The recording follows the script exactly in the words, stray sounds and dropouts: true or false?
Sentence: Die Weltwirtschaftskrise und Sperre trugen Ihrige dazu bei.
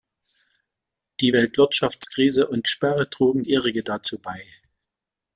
true